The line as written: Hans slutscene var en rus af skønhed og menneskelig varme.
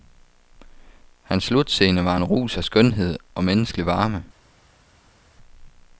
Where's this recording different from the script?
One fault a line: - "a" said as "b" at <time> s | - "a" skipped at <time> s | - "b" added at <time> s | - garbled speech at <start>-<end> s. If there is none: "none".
none